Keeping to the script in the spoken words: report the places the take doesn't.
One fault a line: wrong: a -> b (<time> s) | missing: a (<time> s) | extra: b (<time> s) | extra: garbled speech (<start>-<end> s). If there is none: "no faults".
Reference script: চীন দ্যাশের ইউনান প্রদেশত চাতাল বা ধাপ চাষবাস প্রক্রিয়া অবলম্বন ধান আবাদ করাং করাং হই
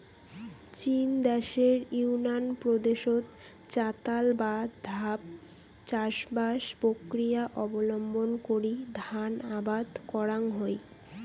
extra: করি (8.5 s)
missing: করাং (10.4 s)